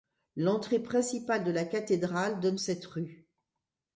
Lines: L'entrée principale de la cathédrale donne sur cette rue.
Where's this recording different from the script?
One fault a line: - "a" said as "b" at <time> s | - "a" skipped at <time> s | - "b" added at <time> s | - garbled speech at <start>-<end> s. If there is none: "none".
- "sur" skipped at 2.6 s